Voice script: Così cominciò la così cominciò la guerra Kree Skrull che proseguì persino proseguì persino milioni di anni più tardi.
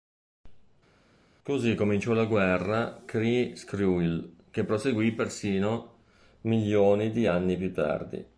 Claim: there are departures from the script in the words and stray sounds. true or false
true